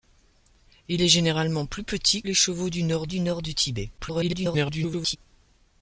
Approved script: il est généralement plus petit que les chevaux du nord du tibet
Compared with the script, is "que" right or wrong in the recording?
wrong